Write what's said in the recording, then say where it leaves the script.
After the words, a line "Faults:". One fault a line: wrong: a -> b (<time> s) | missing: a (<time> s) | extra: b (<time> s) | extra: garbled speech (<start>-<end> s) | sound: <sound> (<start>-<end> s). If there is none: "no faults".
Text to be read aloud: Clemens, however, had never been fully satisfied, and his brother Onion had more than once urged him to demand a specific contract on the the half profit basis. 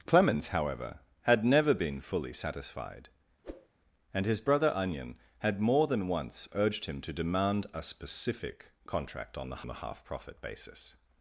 Clemens, however, had never been fully satisfied, and his brother Onion had more than once urged him to demand a specific contract on the the half profit basis.
Faults:
sound: whoosh (3.4-3.7 s)